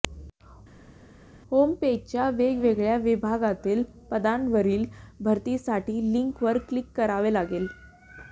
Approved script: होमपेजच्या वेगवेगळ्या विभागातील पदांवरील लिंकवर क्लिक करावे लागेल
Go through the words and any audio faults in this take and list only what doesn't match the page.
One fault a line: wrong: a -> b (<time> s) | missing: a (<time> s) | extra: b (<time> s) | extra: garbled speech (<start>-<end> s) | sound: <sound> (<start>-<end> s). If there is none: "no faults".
extra: भरतीसाठी (5.2 s)